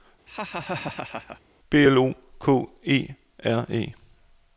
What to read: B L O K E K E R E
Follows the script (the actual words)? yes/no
no